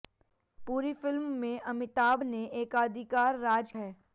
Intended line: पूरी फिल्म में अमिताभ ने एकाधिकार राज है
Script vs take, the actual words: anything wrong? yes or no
no